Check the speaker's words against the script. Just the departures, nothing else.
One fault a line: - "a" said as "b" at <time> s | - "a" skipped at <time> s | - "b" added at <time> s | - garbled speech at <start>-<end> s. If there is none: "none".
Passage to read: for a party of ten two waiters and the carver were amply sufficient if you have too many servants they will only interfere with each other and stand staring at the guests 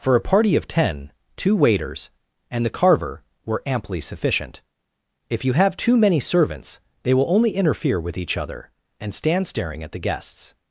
none